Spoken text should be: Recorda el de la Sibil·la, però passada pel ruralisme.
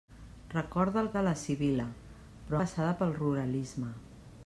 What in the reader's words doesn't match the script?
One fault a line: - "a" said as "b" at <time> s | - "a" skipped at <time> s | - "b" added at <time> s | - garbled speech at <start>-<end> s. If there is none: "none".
none